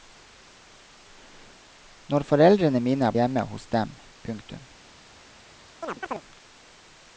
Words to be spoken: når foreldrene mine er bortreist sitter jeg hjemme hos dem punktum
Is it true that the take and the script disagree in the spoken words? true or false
true